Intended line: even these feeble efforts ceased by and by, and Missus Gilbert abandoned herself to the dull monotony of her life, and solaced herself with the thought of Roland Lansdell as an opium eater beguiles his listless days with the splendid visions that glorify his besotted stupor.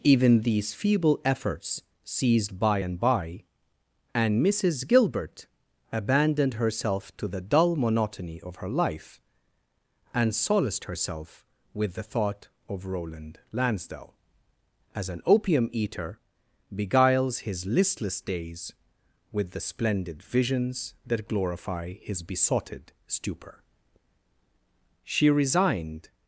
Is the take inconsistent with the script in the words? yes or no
yes